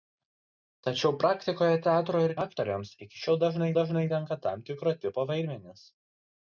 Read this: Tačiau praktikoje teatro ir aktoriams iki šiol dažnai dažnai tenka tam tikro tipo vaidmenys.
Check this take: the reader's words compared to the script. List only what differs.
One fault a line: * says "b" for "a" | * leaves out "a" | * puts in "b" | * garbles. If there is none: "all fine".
all fine